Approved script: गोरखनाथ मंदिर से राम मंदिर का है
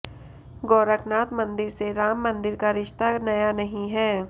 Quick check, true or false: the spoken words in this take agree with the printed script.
false